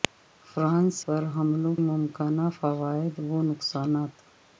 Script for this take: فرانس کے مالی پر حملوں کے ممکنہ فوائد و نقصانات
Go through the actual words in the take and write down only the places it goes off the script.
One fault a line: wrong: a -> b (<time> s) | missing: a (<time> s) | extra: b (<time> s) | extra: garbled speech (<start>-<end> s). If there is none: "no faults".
missing: کے مالی (0.9 s)
missing: کے (1.7 s)